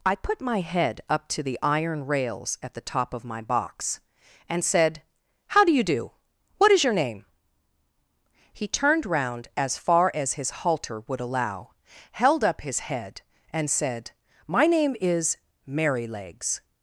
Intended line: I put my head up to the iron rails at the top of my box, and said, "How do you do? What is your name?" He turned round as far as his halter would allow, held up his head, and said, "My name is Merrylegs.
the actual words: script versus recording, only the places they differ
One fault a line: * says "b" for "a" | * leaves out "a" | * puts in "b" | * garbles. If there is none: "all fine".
all fine